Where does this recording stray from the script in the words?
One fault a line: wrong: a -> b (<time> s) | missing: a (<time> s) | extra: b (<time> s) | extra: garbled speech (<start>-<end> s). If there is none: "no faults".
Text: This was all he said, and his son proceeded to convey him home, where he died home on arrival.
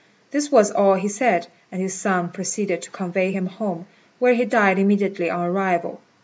wrong: home -> immediately (4.8 s)